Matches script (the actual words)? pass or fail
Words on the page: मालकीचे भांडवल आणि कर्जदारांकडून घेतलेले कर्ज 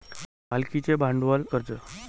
fail